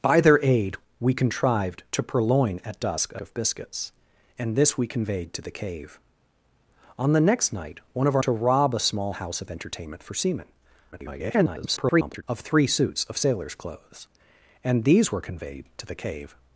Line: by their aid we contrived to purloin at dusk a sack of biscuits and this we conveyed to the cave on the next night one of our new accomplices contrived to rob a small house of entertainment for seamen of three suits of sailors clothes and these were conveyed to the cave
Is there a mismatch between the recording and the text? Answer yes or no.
yes